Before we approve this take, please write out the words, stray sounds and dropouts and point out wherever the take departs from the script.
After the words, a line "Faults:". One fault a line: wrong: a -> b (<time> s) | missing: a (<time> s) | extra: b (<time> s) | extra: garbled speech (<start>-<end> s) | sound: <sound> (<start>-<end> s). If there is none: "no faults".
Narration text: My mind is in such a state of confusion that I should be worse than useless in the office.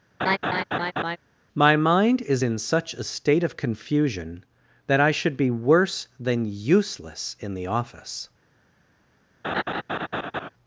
My mind is in such a state of confusion that I should be worse than useless in the office.
Faults:
sound: laugh (0.2-1.2 s)
sound: laugh (9.4-10.5 s)